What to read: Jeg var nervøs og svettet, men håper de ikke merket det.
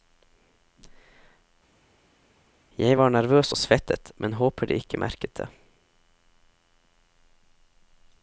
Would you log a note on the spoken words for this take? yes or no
no